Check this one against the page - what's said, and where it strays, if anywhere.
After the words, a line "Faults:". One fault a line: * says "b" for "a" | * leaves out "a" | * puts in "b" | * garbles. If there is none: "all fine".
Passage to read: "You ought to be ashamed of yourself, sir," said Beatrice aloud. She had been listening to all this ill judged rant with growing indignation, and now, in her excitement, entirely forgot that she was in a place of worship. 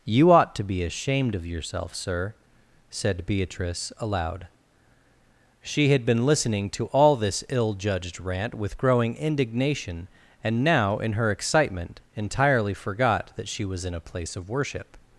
"You ought to be ashamed of yourself, sir," said Beatrice aloud. She had been listening to all this ill judged rant with growing indignation, and now, in her excitement, entirely forgot that she was in a place of worship.
Faults:
all fine